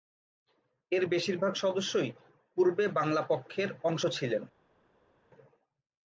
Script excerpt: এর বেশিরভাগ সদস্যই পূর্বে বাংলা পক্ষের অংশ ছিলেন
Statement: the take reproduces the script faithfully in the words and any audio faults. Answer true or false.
true